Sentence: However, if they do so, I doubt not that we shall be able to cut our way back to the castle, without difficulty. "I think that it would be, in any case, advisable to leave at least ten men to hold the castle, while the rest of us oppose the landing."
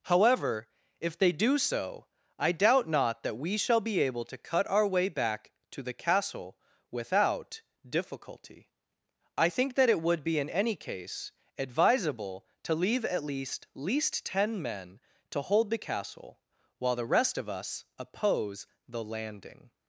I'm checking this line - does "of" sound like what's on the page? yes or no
yes